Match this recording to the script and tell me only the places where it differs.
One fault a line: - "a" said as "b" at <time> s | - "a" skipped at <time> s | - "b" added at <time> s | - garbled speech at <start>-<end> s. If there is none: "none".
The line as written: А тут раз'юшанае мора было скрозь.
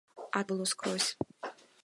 - "тут раз'юшанае мора" skipped at 0.4 s